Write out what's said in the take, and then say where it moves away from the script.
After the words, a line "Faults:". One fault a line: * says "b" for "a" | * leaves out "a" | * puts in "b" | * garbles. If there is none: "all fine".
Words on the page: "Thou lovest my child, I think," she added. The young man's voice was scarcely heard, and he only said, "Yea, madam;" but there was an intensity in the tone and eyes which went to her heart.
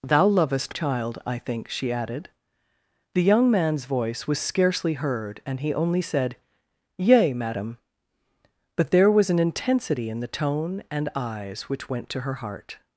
"Thou lovest child, I think," she added. The young man's voice was scarcely heard, and he only said, "Yea, madam;" but there was an intensity in the tone and eyes which went to her heart.
Faults:
* leaves out "my"